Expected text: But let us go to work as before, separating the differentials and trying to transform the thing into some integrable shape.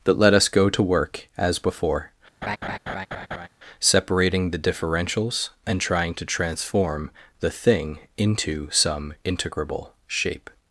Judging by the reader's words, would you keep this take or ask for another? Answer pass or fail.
fail